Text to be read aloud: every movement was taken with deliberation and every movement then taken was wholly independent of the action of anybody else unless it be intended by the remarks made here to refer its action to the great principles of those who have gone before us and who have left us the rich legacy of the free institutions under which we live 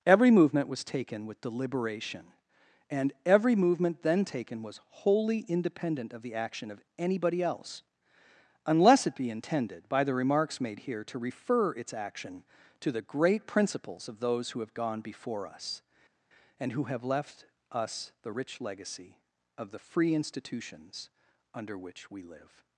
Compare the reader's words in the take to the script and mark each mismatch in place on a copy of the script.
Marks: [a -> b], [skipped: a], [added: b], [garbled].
every movement was taken with deliberation and every movement then taken was wholly independent of the action of anybody else unless it be intended by the remarks made here to refer its action to the great principles of those who have gone before us and who have left us the rich legacy of the free institutions under which we live